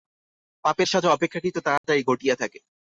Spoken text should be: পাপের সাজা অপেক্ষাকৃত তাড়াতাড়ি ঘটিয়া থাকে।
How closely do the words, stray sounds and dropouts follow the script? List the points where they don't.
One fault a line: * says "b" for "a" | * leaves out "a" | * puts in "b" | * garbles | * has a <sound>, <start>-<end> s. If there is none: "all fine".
* has a dropout, 1.8-1.8 s